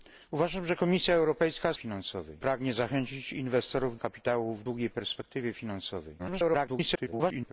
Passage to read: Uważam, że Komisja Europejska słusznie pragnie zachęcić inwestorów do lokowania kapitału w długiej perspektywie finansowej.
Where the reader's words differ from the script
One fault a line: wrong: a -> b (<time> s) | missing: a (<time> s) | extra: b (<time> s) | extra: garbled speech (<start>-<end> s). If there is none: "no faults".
wrong: słusznie -> finansowej (1.8 s)
missing: do lokowania (4.0 s)
extra: garbled speech (6.2-7.5 s)